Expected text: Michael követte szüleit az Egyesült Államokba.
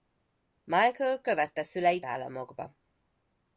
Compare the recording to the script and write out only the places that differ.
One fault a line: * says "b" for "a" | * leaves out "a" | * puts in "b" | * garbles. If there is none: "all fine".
* leaves out "az Egyesült"